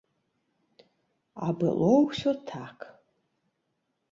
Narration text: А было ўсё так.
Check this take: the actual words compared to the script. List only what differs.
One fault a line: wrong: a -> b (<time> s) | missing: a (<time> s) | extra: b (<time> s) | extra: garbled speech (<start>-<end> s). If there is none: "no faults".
no faults